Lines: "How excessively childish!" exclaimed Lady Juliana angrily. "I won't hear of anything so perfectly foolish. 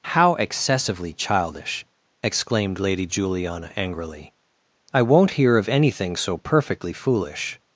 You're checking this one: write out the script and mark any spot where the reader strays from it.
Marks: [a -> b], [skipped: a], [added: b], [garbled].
"How excessively childish!" exclaimed Lady Juliana angrily. "I won't hear of anything so perfectly foolish.